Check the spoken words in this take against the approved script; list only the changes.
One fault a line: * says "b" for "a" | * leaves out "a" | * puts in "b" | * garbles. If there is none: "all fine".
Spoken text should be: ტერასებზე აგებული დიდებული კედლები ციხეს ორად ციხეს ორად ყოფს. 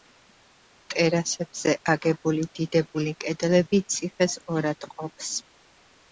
* leaves out "ციხეს ორად"